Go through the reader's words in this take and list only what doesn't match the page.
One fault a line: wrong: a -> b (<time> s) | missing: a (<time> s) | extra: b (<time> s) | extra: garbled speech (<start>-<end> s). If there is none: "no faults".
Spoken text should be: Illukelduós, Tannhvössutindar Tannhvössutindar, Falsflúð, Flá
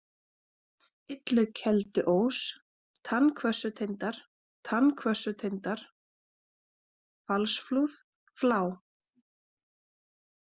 no faults